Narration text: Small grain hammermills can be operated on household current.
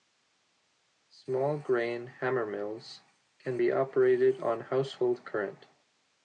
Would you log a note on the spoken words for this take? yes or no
no